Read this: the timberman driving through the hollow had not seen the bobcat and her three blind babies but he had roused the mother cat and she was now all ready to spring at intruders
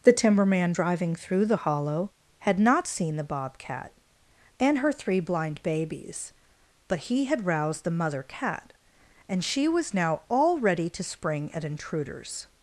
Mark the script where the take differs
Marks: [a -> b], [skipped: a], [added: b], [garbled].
the timberman driving through the hollow had not seen the bobcat and her three blind babies but he had roused the mother cat and she was now all ready to spring at intruders